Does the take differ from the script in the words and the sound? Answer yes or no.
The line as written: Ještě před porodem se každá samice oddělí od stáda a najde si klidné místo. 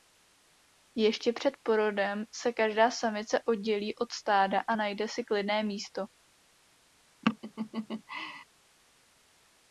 yes